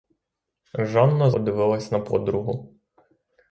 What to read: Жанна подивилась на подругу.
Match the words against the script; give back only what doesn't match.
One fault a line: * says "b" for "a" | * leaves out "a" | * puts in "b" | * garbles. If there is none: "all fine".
all fine